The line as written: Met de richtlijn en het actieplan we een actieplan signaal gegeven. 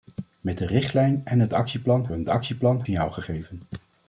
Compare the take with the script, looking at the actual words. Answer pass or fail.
pass